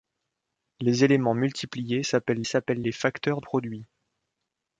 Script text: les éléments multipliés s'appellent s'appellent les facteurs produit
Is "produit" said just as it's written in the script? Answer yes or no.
yes